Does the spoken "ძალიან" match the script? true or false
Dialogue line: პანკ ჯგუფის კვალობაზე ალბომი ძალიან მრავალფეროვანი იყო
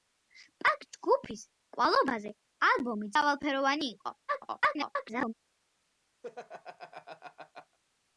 false